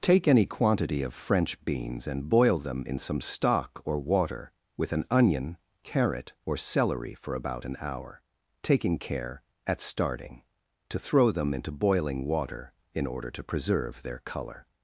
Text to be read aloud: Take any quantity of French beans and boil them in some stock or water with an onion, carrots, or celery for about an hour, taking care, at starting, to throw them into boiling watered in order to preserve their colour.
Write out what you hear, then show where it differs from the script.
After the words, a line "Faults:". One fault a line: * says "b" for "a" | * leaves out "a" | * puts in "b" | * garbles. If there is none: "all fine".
Take any quantity of French beans and boil them in some stock or water with an onion, carrot, or celery for about an hour, taking care, at starting, to throw them into boiling water in order to preserve their colour.
Faults:
* says "carrot" for "carrots"
* says "water" for "watered"